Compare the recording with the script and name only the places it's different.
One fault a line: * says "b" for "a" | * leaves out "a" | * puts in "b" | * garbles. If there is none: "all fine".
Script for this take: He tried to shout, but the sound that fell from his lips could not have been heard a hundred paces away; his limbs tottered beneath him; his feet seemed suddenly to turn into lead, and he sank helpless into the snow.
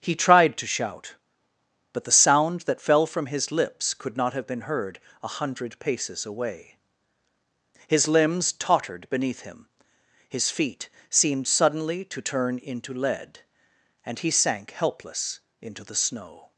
all fine